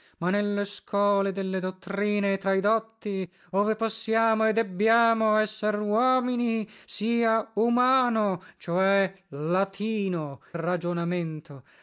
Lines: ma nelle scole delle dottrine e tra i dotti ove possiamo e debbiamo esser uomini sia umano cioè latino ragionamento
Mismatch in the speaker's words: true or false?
false